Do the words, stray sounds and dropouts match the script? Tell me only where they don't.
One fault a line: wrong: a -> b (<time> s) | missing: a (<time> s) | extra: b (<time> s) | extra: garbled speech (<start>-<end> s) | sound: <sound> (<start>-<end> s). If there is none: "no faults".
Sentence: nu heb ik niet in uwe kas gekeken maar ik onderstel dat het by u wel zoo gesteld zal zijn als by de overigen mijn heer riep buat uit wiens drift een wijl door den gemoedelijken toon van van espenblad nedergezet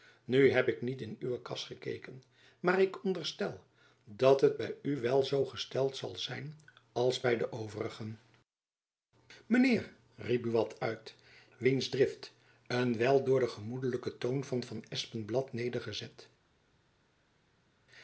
no faults